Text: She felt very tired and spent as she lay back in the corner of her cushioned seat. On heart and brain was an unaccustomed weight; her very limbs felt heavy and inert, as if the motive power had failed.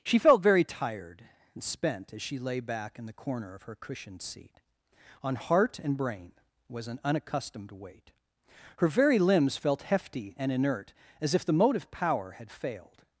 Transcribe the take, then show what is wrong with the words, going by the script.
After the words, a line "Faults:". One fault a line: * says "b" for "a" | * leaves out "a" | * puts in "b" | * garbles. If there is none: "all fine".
She felt very tired and spent as she lay back in the corner of her cushioned seat. On heart and brain was an unaccustomed weight; her very limbs felt hefty and inert, as if the motive power had failed.
Faults:
* says "hefty" for "heavy"